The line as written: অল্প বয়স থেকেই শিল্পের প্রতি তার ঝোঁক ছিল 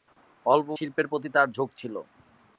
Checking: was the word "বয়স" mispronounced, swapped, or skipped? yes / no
yes